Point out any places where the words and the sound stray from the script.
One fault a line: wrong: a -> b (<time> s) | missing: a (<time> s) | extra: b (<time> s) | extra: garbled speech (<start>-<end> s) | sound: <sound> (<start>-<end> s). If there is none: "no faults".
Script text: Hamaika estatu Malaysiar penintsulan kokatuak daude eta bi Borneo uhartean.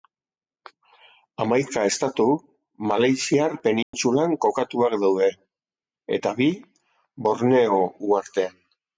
sound: dropout (3.8-3.9 s)